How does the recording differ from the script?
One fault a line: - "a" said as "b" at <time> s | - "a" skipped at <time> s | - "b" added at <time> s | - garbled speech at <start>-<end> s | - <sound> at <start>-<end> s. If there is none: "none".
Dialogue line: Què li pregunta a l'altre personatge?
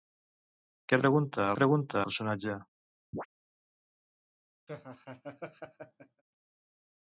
- "li" skipped at 1.0 s
- "l'altre" said as "pregunta" at 1.6 s
- chirp at 3.1-3.3 s
- laugh at 4.7-6.2 s